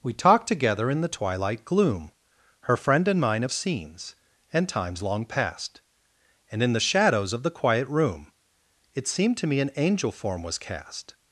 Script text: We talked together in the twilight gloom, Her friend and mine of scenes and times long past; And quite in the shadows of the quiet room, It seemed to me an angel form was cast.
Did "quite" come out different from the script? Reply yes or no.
yes